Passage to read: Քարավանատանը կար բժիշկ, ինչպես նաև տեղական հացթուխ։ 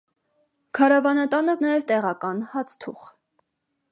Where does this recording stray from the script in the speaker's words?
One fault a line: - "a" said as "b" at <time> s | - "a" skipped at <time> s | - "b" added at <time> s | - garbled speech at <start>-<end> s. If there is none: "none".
- "կար բժիշկ ինչպես" skipped at 1.5 s